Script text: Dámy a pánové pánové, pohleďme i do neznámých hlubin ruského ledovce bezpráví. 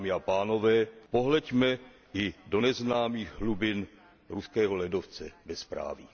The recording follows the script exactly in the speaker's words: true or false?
false